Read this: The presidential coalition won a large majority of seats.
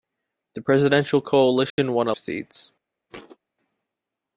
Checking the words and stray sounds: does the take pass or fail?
fail